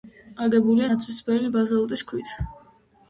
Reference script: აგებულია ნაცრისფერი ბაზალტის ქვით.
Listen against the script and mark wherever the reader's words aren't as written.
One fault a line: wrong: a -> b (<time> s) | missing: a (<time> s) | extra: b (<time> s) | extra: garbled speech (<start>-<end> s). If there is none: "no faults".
no faults